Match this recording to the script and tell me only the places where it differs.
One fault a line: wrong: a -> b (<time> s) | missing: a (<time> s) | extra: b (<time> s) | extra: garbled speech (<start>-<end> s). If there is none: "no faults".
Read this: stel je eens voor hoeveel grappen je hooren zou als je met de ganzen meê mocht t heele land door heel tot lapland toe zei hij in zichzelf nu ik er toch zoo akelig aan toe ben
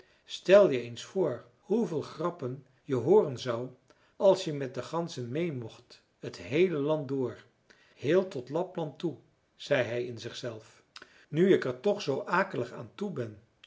no faults